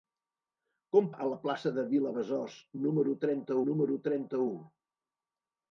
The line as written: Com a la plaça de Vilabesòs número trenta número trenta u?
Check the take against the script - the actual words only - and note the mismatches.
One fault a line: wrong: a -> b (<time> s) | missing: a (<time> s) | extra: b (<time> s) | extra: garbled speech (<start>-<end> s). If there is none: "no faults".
no faults